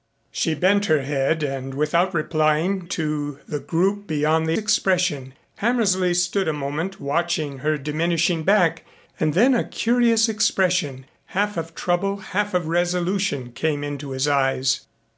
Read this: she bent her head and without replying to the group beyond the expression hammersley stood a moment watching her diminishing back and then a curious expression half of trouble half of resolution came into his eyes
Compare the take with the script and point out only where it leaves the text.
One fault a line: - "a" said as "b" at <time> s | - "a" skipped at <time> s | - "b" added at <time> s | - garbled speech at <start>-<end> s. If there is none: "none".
none